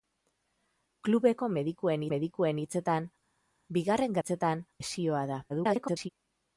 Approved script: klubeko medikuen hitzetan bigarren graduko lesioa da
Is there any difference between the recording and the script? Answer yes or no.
yes